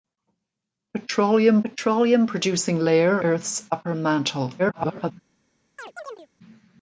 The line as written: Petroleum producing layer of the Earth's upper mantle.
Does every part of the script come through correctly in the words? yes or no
no